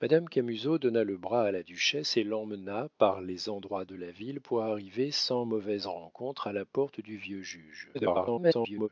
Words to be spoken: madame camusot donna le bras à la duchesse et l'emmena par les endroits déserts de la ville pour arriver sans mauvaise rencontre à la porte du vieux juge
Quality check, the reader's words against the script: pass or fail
fail